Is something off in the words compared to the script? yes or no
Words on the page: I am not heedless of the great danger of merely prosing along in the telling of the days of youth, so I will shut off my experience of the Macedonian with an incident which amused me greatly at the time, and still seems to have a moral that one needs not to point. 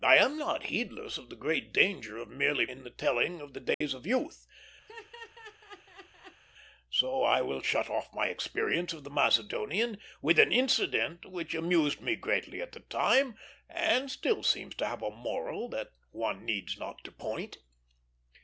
yes